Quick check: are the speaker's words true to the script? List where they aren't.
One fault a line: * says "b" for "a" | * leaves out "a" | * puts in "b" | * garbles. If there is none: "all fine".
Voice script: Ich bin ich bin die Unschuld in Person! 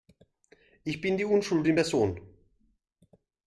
* leaves out "ich bin"